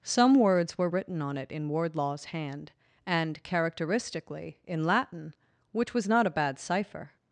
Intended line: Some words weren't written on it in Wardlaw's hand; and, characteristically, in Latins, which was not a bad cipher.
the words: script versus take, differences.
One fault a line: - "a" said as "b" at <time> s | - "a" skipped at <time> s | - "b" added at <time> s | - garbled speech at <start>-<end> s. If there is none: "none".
- "weren't" said as "were" at 0.8 s
- "Latins" said as "Latin" at 4.8 s